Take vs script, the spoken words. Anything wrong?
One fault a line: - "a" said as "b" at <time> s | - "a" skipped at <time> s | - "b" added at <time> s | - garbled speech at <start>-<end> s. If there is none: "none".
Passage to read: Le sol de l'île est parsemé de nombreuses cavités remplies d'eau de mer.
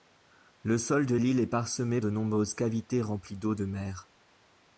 none